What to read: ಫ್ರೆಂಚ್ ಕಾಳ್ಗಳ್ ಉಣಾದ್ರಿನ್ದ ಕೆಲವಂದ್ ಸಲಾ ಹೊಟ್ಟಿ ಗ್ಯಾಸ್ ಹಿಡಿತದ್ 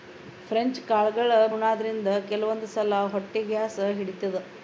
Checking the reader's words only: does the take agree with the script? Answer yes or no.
yes